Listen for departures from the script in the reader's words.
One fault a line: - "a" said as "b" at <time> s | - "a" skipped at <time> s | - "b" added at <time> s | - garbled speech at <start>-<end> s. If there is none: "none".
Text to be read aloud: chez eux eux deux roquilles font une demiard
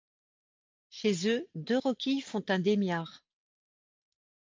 - "eux" skipped at 1.5 s
- "une" said as "un" at 2.5 s